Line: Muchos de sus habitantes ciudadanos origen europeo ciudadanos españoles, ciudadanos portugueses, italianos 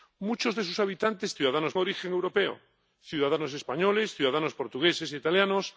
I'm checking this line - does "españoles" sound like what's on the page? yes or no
yes